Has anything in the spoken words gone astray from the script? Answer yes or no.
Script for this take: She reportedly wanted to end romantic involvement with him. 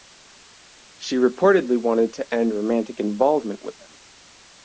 no